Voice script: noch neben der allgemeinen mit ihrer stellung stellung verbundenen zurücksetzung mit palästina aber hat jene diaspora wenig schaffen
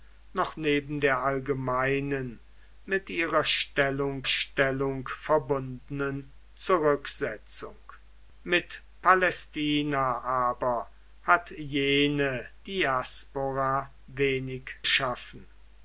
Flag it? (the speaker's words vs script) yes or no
no